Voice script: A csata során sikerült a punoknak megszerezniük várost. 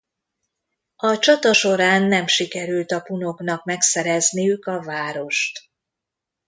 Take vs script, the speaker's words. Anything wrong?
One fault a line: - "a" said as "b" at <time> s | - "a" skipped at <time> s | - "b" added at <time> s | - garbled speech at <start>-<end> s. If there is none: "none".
- "nem" added at 2.0 s
- "a" added at 4.6 s